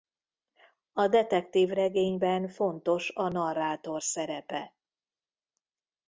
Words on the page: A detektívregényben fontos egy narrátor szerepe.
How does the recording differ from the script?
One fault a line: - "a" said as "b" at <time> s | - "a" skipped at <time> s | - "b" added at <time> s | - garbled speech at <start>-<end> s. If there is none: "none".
- "egy" said as "a" at 3.1 s